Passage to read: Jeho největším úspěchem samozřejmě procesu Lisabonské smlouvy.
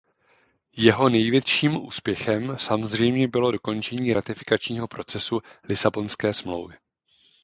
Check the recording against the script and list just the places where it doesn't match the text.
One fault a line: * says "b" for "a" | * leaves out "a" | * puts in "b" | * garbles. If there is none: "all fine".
* puts in "bylo dokončení ratifikačního"